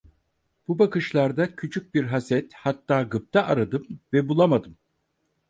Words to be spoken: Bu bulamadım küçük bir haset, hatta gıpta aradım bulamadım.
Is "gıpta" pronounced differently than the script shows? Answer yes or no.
no